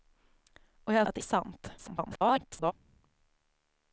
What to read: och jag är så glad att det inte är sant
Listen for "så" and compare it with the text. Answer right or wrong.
wrong